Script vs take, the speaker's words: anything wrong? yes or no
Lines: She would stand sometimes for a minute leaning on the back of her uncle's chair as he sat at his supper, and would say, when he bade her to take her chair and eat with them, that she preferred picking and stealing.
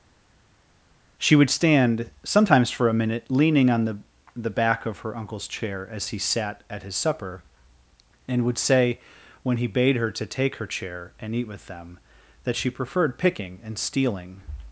yes